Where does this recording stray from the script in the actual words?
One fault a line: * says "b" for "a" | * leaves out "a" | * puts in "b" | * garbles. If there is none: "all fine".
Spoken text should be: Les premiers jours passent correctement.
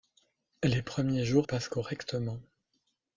all fine